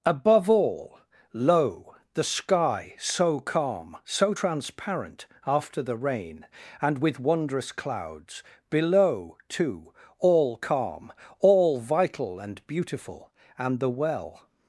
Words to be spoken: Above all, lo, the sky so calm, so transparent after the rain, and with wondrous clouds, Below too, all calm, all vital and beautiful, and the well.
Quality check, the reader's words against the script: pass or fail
pass